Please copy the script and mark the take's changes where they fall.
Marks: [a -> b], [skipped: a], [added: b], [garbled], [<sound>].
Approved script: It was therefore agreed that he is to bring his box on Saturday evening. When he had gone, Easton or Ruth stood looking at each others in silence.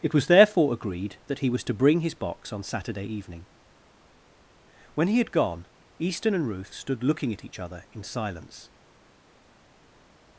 It was therefore agreed that he [is -> was] to bring his box on Saturday evening. When he had gone, Easton [or -> and] Ruth stood looking at each [others -> other] in silence.